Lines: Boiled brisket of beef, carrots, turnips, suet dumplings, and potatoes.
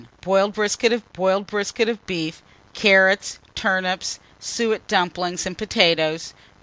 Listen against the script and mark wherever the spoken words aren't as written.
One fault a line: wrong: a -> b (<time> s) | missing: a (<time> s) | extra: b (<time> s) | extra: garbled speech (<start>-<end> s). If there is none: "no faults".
extra: boiled brisket of (1.1 s)